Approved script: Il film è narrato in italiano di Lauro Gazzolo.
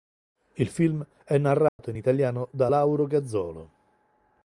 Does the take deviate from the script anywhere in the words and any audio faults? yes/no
yes